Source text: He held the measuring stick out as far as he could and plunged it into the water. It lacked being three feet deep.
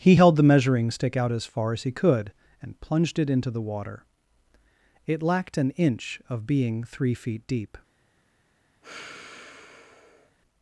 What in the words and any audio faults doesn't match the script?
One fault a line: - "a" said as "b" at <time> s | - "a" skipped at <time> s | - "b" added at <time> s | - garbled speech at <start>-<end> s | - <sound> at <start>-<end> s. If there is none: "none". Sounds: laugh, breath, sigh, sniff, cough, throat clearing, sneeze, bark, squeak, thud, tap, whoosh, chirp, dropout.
- "an inch of" added at 5.6 s
- sigh at 8.8-10.4 s